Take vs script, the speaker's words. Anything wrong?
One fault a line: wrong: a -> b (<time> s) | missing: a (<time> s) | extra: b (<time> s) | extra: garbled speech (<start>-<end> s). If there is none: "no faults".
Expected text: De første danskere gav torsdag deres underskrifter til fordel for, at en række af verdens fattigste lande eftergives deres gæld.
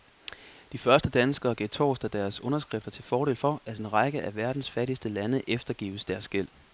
no faults